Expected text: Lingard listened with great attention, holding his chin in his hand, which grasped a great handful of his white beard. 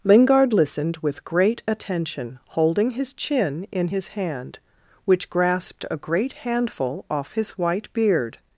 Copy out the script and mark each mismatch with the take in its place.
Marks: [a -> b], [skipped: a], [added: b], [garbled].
Lingard listened with great attention, holding his chin in his hand, which grasped a great handful [of -> off] his white beard.